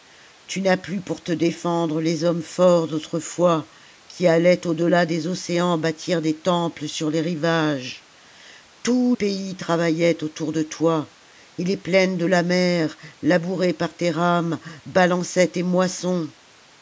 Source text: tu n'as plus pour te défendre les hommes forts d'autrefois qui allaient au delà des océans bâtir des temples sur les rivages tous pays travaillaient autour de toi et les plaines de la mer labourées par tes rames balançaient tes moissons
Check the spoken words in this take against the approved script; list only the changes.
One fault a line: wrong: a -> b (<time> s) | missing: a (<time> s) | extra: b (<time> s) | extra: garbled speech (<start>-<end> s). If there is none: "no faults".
no faults